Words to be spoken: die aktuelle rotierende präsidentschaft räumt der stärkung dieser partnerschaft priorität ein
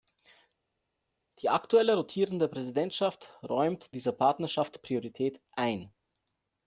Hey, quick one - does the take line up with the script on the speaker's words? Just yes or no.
no